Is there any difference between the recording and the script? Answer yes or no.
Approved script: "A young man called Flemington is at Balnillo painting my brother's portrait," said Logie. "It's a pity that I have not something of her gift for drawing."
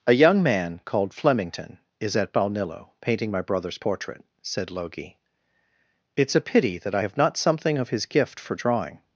yes